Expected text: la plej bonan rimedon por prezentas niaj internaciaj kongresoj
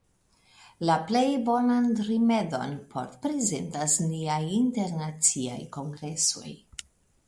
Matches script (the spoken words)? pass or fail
pass